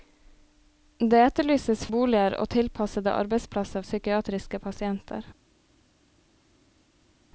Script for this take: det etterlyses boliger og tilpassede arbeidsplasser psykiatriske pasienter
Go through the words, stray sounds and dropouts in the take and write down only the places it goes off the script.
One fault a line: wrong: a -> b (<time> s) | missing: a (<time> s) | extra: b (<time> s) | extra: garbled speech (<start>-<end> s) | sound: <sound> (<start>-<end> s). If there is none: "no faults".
no faults